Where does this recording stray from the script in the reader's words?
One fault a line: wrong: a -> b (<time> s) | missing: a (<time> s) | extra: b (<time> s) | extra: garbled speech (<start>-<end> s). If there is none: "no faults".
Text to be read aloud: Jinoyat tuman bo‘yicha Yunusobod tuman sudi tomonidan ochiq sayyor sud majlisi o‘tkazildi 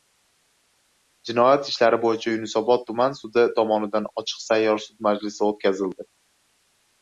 wrong: tuman -> ishlari (1.7 s)